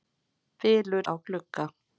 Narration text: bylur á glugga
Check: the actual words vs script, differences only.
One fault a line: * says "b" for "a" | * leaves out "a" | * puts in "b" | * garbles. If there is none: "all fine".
all fine